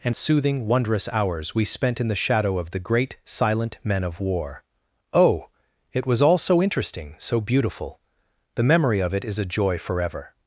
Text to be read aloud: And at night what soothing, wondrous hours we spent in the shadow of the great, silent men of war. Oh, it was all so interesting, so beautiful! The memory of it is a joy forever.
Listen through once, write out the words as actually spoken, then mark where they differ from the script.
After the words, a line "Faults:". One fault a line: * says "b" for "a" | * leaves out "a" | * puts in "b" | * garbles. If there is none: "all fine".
And soothing, wondrous hours we spent in the shadow of the great, silent men of war. Oh, it was all so interesting, so beautiful! The memory of it is a joy forever.
Faults:
* leaves out "at night what"